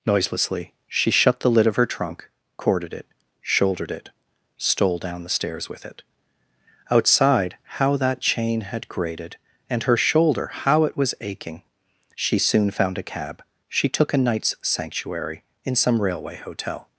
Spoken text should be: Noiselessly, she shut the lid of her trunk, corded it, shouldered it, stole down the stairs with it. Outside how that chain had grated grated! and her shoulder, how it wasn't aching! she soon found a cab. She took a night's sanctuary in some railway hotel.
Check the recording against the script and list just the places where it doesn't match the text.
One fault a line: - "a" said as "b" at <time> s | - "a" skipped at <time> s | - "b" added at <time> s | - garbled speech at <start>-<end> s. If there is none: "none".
- "grated" skipped at 9.4 s
- "wasn't" said as "was" at 11.0 s